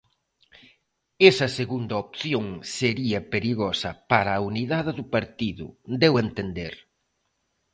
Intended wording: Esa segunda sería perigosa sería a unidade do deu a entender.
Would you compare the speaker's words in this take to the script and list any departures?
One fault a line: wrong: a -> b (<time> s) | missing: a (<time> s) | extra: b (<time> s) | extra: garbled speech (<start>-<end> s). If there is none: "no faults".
extra: opción (2.0 s)
wrong: sería -> para (4.1 s)
extra: partido (5.2 s)